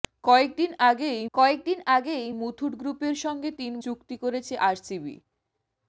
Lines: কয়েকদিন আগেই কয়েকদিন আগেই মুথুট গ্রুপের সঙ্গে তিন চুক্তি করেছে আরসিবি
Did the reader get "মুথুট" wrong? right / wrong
right